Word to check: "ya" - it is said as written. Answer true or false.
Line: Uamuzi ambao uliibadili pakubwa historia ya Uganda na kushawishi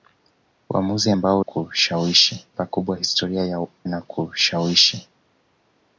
false